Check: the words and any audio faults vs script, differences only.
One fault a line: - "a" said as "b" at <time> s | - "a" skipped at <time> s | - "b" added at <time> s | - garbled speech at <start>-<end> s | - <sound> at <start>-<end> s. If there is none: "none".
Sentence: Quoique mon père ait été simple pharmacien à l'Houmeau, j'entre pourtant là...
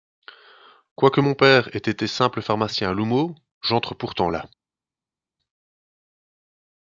none